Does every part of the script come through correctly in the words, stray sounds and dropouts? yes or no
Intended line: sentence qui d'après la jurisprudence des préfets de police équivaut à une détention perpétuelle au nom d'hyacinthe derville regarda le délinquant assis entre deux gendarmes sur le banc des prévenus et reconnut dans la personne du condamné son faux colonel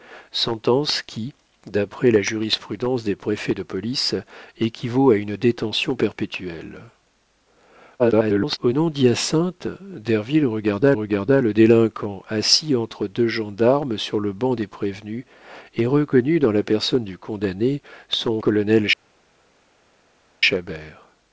no